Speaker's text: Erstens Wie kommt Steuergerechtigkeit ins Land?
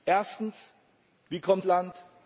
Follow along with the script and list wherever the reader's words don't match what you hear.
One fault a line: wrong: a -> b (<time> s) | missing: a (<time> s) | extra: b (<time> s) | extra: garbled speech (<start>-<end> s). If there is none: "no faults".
missing: Steuergerechtigkeit ins (1.6 s)